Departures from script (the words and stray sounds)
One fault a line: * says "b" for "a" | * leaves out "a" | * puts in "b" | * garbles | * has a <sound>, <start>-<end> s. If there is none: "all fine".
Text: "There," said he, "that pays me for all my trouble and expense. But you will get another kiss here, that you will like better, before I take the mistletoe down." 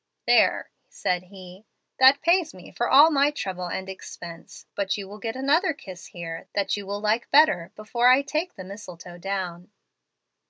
all fine